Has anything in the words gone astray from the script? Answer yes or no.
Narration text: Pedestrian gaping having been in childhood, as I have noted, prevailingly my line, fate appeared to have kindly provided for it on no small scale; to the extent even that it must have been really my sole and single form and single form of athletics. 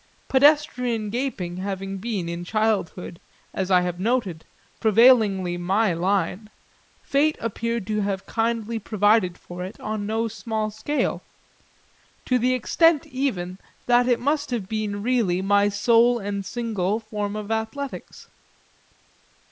yes